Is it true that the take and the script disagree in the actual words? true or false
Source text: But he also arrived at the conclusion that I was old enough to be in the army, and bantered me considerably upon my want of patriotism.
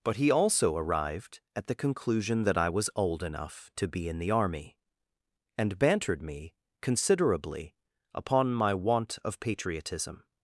false